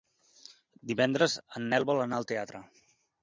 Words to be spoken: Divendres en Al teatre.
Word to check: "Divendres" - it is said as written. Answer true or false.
true